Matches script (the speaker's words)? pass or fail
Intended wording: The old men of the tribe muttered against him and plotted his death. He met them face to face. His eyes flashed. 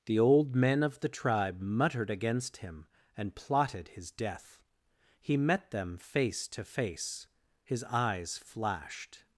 pass